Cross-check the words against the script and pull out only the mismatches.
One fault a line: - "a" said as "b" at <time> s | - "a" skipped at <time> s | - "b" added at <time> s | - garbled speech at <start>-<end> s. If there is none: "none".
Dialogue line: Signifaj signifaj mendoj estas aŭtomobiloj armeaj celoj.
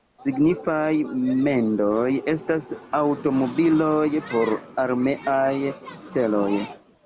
- "signifaj" skipped at 0.9 s
- "por" added at 4.3 s